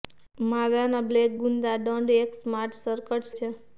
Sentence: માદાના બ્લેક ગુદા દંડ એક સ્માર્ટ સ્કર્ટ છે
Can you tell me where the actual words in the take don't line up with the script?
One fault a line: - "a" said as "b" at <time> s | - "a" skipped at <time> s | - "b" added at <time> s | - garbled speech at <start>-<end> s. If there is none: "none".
none